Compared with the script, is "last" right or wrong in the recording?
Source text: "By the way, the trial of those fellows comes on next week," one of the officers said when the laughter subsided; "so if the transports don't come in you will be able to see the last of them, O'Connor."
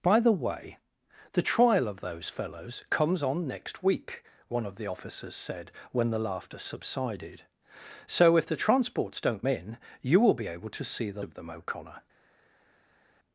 wrong